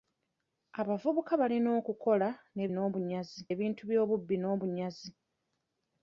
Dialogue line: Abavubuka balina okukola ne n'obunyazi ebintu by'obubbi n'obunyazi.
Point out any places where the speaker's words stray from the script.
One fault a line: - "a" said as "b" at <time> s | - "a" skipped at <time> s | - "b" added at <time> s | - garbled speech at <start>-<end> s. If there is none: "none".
none